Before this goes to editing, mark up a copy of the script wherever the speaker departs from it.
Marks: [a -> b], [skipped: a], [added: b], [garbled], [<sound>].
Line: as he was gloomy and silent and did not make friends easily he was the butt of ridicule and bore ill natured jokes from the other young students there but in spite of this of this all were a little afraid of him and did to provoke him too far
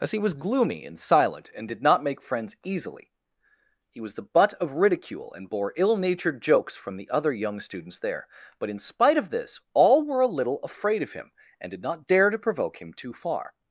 as he was gloomy and silent and did not make friends easily he was the butt of ridicule and bore ill natured jokes from the other young students there but in spite of this [skipped: of this] all were a little afraid of him and did [added: not dare] to provoke him too far